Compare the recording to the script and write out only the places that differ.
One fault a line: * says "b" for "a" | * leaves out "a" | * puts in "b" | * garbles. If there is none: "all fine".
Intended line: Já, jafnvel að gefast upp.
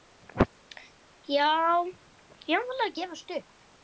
all fine